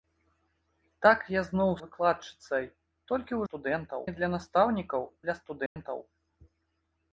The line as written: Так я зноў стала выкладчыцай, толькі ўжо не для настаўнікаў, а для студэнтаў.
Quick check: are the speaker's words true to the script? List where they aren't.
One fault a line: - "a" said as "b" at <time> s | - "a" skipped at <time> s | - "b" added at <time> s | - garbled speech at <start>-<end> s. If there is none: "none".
- "стала" skipped at 1.7 s
- "ўжо" said as "студэнтаў" at 3.5 s
- "а" skipped at 5.0 s